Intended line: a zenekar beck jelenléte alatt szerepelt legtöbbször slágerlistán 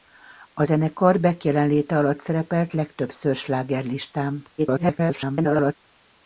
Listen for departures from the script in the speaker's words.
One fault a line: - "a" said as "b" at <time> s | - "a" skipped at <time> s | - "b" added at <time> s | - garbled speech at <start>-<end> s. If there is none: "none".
- garbled speech at 4.6-5.7 s